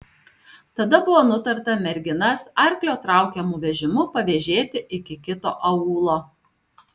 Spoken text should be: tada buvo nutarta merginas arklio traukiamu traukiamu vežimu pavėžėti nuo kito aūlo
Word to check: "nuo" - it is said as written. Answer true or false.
false